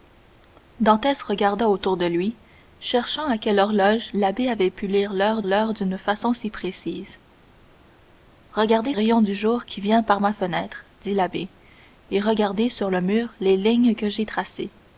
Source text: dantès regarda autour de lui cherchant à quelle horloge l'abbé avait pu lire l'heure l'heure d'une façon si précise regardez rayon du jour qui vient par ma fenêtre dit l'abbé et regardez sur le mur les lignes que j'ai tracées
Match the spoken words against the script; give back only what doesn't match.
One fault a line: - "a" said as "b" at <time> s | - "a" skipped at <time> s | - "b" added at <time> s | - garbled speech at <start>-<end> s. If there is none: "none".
none